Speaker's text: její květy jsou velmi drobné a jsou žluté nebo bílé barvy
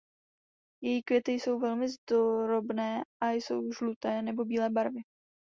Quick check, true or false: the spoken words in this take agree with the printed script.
true